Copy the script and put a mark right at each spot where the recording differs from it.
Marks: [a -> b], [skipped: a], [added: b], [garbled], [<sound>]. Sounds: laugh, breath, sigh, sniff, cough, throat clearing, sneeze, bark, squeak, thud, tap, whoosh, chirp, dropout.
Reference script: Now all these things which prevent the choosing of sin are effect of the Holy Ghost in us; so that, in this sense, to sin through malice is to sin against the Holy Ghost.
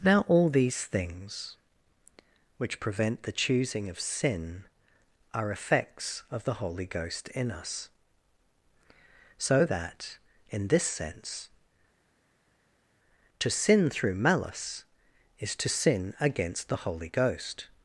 Now all these things which prevent the choosing of sin are [effect -> effects] of the Holy Ghost in us; so that, in this sense, to sin through malice is to sin against the Holy Ghost.